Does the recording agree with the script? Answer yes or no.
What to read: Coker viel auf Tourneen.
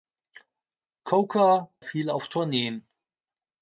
yes